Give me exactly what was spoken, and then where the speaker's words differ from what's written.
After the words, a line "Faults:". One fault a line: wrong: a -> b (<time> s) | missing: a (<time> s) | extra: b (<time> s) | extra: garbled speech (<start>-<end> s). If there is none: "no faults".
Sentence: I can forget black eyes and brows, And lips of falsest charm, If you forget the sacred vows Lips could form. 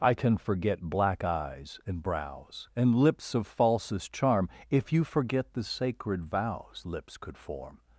I can forget black eyes and brows, And lips of falsest charm, If you forget the sacred vows Lips could form.
Faults:
no faults